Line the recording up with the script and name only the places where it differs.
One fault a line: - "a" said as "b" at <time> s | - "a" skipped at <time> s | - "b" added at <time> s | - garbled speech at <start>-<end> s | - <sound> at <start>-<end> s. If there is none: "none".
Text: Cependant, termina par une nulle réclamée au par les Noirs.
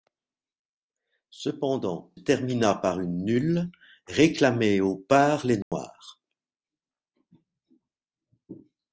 - dropout at 5.6-5.7 s